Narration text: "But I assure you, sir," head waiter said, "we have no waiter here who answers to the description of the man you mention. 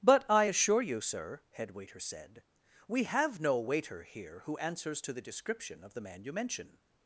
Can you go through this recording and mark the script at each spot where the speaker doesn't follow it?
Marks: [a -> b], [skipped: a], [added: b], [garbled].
"But I assure you, sir," head waiter said, "we have no waiter here who answers to the description of the man you mention.